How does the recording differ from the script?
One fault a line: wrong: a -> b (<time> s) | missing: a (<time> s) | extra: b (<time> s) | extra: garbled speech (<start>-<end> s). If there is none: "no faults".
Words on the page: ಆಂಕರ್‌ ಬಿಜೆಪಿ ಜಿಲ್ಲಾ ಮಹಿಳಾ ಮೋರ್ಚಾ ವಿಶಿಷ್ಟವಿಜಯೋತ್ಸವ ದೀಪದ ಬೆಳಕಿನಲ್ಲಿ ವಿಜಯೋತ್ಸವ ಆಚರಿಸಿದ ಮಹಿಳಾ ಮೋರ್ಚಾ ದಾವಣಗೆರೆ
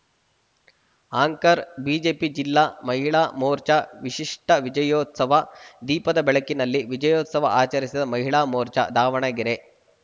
no faults